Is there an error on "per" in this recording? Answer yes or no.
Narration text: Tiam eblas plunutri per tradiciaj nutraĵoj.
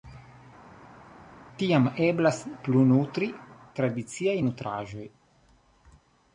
yes